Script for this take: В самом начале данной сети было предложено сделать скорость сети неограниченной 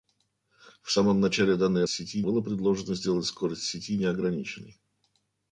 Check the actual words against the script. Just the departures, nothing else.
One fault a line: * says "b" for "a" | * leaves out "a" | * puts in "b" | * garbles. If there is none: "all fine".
all fine